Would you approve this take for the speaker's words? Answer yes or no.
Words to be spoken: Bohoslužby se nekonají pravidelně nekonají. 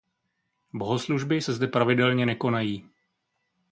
no